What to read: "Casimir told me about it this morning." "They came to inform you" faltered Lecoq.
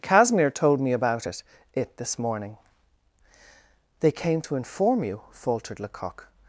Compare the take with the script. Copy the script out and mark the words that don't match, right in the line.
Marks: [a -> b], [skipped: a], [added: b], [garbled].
"Casimir told me about it [added: it] this morning." "They came to inform you" faltered Lecoq.